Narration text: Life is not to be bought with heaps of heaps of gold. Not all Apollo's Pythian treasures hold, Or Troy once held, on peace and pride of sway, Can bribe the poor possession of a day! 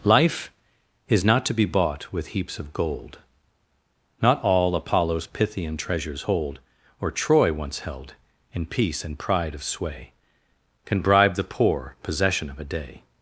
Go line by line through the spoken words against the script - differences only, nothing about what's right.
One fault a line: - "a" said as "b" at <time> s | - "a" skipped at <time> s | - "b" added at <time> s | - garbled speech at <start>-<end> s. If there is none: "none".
- "heaps of" skipped at 2.7 s
- "on" said as "in" at 8.5 s